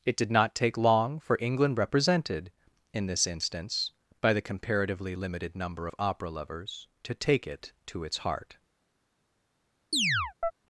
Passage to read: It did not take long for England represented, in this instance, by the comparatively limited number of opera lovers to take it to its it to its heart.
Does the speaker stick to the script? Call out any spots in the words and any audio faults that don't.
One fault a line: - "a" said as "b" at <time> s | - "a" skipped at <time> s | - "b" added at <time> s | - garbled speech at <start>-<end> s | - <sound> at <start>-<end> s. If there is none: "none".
- "it to its" skipped at 8.2 s
- chirp at 9.9-10.5 s